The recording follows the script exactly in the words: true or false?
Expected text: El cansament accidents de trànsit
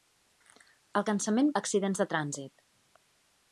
true